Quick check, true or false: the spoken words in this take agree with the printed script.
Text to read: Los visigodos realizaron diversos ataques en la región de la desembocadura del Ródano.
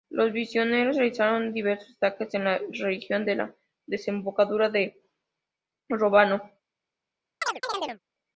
true